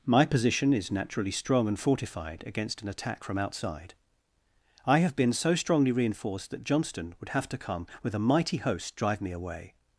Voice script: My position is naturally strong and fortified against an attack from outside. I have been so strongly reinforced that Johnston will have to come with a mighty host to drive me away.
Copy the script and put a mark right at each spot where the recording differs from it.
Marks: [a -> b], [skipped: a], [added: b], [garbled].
My position is naturally strong and fortified against an attack from outside. I have been so strongly reinforced that Johnston [will -> would] have to come with a mighty host [skipped: to] drive me away.